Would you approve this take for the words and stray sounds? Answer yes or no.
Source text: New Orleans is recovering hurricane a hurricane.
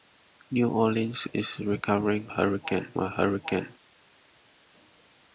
yes